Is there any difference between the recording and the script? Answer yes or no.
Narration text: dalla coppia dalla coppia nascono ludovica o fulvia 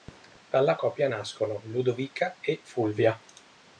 yes